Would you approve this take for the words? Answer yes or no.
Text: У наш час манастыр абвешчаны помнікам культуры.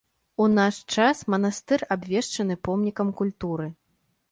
yes